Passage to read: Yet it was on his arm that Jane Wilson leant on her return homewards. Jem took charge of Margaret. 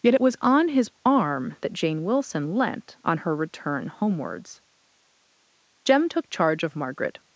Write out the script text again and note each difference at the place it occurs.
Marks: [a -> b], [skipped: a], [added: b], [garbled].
Yet it was on his arm that Jane Wilson leant on her return homewards. Jem took charge of Margaret.